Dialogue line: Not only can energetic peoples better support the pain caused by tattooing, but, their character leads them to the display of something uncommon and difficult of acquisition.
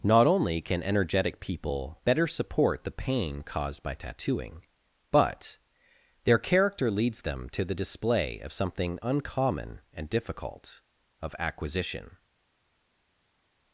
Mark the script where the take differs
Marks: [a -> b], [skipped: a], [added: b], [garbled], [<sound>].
Not only can energetic [peoples -> people] better support the pain caused by tattooing, but, their character leads them to the display of something uncommon and difficult of acquisition.